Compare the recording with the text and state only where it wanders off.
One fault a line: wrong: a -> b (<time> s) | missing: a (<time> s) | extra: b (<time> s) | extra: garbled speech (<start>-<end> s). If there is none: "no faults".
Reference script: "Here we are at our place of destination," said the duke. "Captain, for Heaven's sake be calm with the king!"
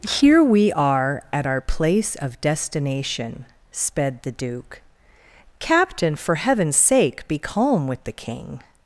wrong: said -> sped (3.7 s)